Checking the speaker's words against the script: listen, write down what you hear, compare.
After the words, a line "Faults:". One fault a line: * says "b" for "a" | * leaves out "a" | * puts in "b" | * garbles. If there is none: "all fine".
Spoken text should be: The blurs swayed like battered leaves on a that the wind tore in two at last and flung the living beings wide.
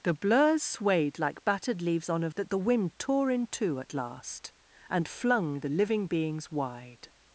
The blurs swayed like battered leaves on a that the wind tore in two at last and flung the living beings wide.
Faults:
all fine